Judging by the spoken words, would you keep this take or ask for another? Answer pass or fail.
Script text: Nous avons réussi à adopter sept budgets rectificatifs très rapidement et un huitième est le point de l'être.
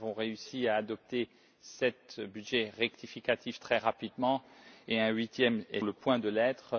pass